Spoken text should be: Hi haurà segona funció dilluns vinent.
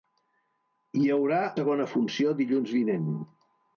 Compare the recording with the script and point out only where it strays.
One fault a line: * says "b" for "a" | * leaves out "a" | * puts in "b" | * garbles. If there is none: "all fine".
all fine